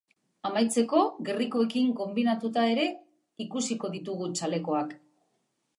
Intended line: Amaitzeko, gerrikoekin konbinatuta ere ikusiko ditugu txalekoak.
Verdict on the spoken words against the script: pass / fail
pass